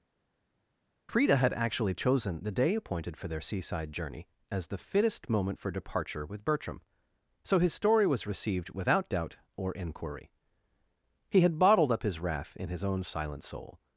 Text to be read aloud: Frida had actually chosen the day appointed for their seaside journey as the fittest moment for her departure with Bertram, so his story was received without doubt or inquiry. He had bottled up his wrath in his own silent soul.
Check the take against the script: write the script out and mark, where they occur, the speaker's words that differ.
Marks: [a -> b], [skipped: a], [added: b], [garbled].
Frida had actually chosen the day appointed for their seaside journey as the fittest moment for [skipped: her] departure with Bertram, so his story was received without doubt or inquiry. He had bottled up his wrath in his own silent soul.